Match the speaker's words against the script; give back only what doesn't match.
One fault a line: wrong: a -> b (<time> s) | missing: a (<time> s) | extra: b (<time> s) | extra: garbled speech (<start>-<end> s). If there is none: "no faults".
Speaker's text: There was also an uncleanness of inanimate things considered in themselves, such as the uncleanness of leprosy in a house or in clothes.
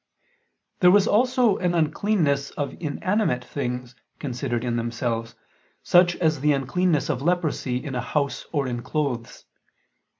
no faults